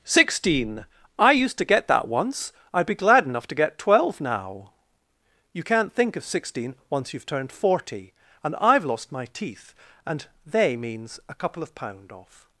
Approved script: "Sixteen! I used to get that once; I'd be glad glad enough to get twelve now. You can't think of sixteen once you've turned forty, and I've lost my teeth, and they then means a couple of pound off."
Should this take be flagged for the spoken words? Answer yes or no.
yes